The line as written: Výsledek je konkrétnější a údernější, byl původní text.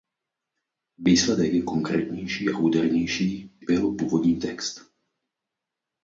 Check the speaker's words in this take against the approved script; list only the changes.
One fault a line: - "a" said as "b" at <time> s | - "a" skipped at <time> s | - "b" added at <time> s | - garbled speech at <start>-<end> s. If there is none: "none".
none